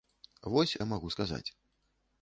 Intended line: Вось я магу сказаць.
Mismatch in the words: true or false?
false